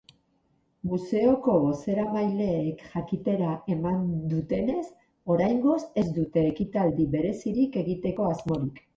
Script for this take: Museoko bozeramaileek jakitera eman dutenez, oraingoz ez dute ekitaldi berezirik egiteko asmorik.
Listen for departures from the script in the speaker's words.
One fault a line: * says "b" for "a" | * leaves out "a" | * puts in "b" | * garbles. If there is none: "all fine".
all fine